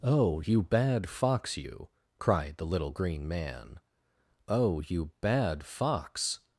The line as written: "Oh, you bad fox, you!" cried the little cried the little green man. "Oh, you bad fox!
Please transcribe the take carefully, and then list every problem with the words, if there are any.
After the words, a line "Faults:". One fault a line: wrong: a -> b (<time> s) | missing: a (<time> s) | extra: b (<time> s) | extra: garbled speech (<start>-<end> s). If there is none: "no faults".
"Oh, you bad fox, you!" cried the little green man. "Oh, you bad fox!
Faults:
missing: cried the little (2.9 s)